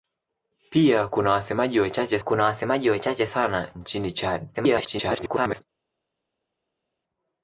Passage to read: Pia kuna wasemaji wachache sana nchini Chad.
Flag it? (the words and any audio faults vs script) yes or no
yes